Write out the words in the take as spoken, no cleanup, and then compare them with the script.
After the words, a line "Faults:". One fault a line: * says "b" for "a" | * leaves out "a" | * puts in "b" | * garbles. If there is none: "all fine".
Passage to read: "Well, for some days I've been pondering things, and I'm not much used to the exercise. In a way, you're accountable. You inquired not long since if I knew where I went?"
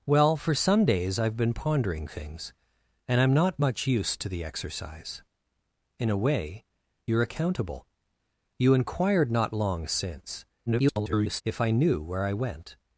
"Well, for some days I've been pondering things, and I'm not much used to the exercise. In a way, you're accountable. You inquired not long since [garbled] if I knew where I went?"
Faults:
* garbles